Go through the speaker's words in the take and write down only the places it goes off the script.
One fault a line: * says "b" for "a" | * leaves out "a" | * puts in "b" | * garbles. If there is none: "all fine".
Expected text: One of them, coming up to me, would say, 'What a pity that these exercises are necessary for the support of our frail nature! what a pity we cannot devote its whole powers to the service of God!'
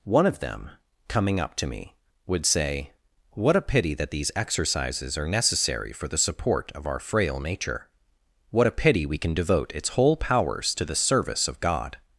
* says "can" for "cannot"